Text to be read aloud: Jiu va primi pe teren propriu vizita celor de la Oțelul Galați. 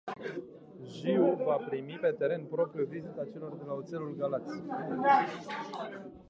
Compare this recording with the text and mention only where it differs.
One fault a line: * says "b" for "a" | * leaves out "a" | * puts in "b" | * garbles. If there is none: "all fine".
all fine